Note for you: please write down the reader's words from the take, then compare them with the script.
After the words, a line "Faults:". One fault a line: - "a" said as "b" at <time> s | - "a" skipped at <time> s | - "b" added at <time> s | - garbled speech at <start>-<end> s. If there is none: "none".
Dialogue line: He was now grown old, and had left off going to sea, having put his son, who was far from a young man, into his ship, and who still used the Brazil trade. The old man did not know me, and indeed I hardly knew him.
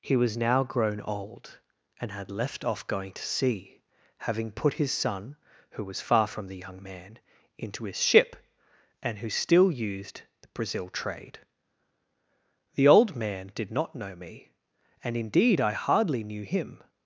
He was now grown old, and had left off going to sea, having put his son, who was far from the young man, into his ship, and who still used the Brazil trade. The old man did not know me, and indeed I hardly knew him.
Faults:
- "a" said as "the" at 6.5 s